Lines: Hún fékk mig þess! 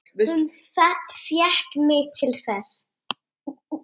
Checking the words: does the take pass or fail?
fail